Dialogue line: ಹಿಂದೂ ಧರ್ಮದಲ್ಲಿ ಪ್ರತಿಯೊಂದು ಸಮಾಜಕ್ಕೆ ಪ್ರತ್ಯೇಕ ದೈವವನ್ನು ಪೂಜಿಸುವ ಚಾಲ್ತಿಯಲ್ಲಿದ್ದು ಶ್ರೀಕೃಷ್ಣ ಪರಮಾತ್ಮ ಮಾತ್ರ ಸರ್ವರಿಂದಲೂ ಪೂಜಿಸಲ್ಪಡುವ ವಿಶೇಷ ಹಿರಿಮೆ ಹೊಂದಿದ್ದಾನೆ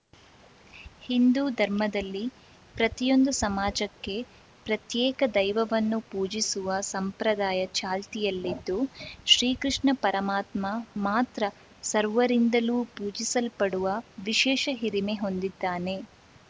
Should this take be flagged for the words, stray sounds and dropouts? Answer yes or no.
yes